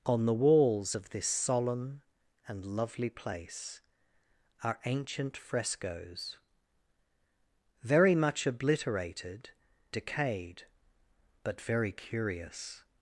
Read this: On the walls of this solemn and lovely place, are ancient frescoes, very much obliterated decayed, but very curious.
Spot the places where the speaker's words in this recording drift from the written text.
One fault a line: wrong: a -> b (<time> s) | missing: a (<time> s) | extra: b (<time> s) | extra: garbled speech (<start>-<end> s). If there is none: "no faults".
no faults